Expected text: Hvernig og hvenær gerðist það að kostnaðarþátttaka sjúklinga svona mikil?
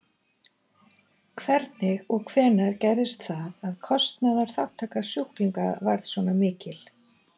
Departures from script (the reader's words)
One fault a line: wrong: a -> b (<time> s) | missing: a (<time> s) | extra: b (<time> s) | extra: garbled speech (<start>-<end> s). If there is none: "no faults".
extra: varð (5.9 s)